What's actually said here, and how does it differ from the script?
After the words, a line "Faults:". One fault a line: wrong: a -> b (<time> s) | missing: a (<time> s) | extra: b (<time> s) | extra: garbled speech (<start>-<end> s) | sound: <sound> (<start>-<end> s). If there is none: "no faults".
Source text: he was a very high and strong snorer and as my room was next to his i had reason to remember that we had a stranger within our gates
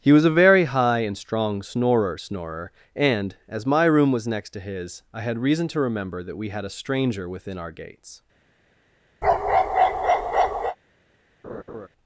he was a very high and strong snorer snorer and as my room was next to his i had reason to remember that we had a stranger within our gates
Faults:
extra: snorer (2.1 s)
sound: bark (9.2-10.8 s)
sound: laugh (11.4-11.9 s)